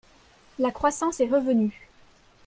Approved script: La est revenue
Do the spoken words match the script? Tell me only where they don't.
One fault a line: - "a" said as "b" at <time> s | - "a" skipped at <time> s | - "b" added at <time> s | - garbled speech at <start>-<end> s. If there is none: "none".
- "croissance" added at 0.7 s